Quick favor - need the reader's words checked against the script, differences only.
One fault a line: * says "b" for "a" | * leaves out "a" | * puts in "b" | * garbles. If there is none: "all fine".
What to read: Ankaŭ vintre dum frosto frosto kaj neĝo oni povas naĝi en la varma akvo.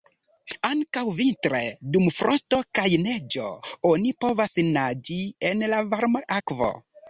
* leaves out "frosto"